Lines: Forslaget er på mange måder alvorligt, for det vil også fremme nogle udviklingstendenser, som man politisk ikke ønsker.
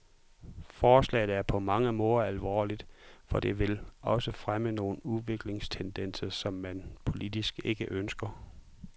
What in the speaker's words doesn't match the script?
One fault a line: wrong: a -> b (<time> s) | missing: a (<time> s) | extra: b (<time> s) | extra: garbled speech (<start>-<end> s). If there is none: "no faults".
no faults